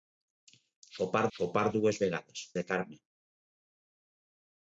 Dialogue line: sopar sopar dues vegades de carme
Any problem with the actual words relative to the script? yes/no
no